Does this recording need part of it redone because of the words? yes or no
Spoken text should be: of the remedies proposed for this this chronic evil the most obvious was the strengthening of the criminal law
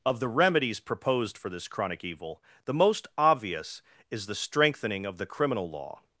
yes